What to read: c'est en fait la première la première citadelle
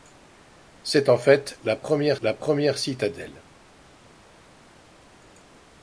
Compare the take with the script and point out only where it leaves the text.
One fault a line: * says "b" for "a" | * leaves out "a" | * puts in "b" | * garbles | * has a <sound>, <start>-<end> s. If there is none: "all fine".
all fine